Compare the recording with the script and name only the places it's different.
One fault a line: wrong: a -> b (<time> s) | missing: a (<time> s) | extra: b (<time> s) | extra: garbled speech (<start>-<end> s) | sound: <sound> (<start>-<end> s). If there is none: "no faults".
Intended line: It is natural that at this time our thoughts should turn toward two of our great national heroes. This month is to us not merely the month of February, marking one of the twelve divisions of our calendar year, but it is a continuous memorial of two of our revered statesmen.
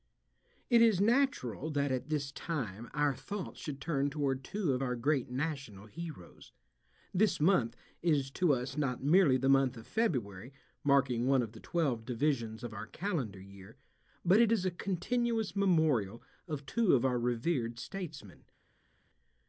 no faults